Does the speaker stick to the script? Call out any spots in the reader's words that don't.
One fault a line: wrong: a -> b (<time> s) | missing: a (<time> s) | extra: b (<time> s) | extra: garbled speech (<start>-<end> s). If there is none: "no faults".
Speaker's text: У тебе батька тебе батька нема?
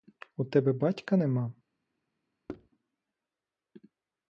missing: тебе батька (1.2 s)